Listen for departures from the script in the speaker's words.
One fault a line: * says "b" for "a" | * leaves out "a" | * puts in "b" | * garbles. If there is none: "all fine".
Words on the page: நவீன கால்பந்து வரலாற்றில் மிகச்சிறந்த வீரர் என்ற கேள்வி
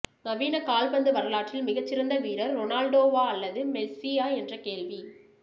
* puts in "ரொனால்டோவா அல்லது மெஸ்ஸியா"